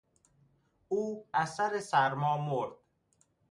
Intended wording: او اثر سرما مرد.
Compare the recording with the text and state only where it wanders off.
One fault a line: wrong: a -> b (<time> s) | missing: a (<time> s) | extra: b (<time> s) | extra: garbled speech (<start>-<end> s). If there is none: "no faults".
no faults